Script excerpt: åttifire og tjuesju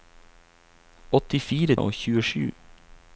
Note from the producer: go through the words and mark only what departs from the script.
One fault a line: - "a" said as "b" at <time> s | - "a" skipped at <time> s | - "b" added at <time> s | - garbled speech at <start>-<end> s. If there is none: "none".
none